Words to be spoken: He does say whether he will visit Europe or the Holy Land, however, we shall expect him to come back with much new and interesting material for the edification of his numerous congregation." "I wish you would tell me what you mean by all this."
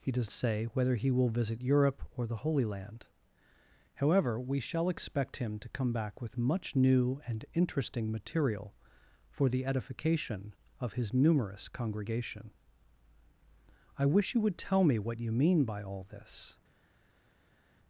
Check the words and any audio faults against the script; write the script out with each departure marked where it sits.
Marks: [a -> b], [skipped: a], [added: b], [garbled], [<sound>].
He does say whether he will visit Europe or the Holy Land, however, we shall expect him to come back with much new and interesting material for the edification of his numerous congregation." "I wish you would tell me what you mean by all this."